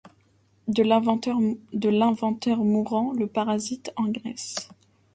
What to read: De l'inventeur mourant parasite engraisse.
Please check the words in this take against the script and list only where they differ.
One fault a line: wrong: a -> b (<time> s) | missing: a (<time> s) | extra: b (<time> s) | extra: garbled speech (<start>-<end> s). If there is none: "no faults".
extra: le (3.1 s)